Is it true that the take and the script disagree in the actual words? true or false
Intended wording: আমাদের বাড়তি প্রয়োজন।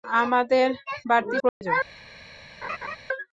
false